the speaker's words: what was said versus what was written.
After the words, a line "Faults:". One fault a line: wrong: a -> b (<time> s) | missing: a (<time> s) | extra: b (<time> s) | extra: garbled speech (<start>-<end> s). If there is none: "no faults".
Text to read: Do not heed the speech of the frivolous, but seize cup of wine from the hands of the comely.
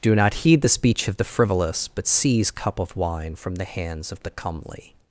Do not heed the speech of the frivolous, but seize cup of wine from the hands of the comely.
Faults:
no faults